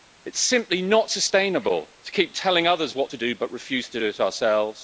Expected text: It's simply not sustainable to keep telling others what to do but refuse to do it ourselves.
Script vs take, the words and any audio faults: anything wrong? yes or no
no